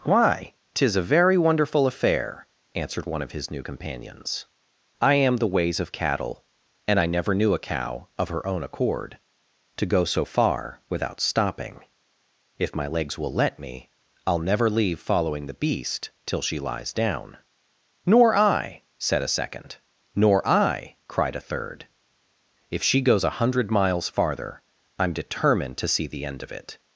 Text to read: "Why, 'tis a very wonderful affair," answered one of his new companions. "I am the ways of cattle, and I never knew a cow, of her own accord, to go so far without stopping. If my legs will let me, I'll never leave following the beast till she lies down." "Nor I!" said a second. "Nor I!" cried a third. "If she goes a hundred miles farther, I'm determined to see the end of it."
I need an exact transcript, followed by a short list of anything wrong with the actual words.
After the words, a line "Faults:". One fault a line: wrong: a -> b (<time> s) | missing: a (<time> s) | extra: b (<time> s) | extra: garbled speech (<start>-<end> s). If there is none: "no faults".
"Why, 'tis a very wonderful affair," answered one of his new companions. "I am the ways of cattle, and I never knew a cow, of her own accord, to go so far without stopping. If my legs will let me, I'll never leave following the beast till she lies down." "Nor I!" said a second. "Nor I!" cried a third. "If she goes a hundred miles farther, I'm determined to see the end of it."
Faults:
no faults